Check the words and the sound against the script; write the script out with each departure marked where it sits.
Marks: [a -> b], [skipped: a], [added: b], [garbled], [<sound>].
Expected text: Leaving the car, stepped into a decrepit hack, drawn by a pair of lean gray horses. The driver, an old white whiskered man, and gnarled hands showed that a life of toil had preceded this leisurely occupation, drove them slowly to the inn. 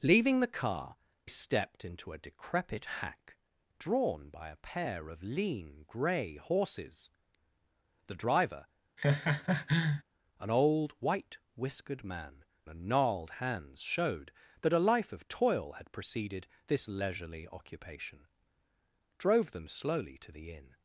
Leaving the car, stepped into a decrepit hack, drawn by a pair of lean gray horses. The driver, [laugh] an old white whiskered man, and gnarled hands showed that a life of toil had preceded this leisurely occupation, drove them slowly to the inn.